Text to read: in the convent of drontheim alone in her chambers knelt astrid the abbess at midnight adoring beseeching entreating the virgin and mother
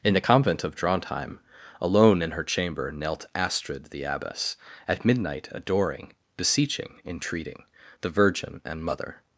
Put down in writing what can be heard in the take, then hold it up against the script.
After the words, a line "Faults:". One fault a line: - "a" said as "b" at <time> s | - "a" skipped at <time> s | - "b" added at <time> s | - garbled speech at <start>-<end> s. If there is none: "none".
in the convent of drontheim alone in her chamber knelt astrid the abbess at midnight adoring beseeching entreating the virgin and mother
Faults:
- "chambers" said as "chamber" at 2.4 s